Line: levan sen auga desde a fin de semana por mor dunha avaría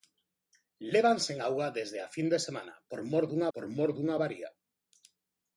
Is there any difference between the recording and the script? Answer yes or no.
yes